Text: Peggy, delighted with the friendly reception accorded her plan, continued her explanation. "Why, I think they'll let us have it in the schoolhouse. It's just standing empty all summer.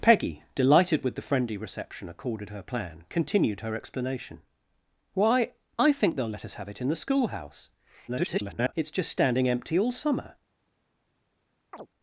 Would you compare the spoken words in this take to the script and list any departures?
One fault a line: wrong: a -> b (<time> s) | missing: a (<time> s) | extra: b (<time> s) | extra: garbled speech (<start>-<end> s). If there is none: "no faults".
extra: garbled speech (8.1-8.7 s)